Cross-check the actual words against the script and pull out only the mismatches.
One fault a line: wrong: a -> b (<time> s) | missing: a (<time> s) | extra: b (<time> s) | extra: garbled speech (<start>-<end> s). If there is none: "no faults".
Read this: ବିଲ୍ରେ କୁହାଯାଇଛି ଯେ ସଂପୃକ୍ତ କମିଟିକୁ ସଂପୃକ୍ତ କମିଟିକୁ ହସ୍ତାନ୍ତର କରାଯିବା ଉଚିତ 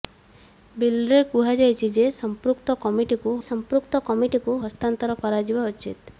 no faults